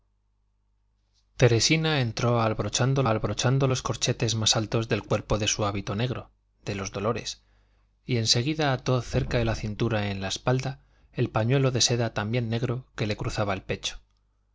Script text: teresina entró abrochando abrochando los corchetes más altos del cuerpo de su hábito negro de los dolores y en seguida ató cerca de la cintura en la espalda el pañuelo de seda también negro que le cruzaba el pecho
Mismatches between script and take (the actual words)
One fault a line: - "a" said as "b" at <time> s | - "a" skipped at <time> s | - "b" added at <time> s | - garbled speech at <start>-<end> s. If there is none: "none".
none